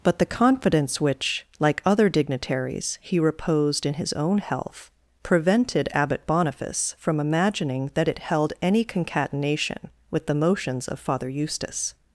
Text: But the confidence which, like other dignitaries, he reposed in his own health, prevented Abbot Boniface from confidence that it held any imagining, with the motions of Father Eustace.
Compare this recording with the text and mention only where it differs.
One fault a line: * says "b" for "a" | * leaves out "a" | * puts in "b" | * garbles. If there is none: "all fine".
* says "imagining" for "confidence"
* says "concatenation" for "imagining"